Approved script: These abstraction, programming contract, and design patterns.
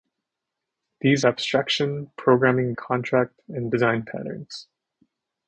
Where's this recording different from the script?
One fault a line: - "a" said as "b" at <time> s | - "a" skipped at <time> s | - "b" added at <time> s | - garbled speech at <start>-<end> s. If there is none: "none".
none